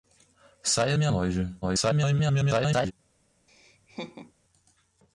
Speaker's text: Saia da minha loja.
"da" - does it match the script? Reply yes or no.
no